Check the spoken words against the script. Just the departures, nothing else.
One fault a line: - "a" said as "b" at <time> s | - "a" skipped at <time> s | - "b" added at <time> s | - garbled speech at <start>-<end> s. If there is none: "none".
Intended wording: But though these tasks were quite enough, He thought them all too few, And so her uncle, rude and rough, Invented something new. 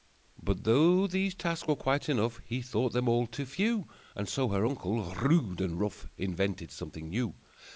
none